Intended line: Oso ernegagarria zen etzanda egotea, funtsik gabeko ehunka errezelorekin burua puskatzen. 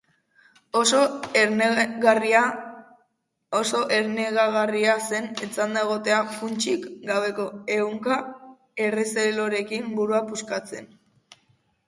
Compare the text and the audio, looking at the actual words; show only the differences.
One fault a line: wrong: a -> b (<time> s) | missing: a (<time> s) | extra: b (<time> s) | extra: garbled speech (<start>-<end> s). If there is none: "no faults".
no faults